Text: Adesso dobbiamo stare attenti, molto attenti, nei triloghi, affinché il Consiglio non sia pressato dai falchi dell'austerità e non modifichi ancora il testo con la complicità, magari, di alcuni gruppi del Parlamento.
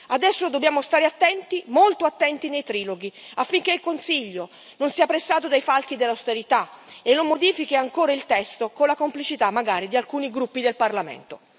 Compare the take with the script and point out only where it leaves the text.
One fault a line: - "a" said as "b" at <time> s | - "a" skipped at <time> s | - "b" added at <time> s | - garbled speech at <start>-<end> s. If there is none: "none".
none